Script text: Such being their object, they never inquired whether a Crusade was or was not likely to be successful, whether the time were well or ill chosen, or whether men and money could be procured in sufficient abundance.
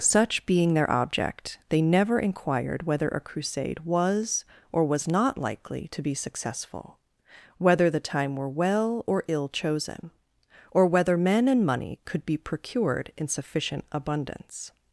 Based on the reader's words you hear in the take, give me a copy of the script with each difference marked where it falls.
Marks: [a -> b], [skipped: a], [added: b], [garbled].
Such being their object, they never inquired whether a Crusade was or was not likely to be successful, whether the time were well or ill chosen, or whether men and money could be procured in sufficient abundance.